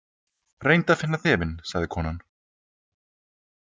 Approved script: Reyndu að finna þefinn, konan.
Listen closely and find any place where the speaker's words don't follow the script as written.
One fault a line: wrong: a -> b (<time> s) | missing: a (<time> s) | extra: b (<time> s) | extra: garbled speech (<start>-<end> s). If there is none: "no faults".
extra: sagði (1.7 s)